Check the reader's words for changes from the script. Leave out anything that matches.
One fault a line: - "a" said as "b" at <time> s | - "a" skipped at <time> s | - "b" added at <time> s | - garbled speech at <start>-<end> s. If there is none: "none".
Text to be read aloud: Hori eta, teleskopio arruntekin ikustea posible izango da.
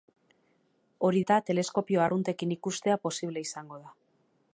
none